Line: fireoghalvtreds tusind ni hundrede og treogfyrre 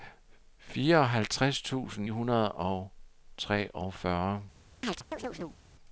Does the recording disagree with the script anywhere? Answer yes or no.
yes